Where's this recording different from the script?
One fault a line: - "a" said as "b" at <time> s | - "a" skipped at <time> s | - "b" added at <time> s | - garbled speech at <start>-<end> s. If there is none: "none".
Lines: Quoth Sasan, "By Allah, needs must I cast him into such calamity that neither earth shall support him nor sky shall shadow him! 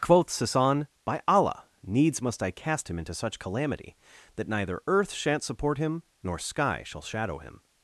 - "shall" said as "shan't" at 5.1 s